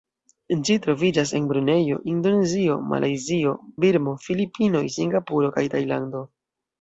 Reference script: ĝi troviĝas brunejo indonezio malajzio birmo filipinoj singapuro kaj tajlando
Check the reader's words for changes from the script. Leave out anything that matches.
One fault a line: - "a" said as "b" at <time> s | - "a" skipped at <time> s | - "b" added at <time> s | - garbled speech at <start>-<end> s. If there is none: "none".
- "en" added at 1.4 s